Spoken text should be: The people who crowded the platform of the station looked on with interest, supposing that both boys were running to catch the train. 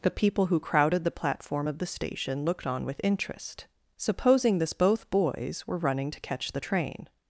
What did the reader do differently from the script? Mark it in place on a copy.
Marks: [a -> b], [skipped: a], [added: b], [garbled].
The people who crowded the platform of the station looked on with interest, supposing [that -> this] both boys were running to catch the train.